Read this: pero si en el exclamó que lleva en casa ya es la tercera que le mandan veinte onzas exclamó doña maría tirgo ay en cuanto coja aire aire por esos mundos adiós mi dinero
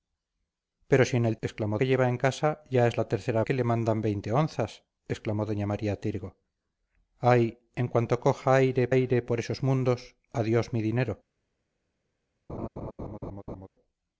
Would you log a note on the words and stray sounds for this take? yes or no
yes